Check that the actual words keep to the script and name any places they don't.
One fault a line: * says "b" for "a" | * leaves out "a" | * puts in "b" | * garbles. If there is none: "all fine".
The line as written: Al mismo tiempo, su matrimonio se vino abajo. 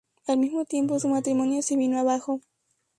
all fine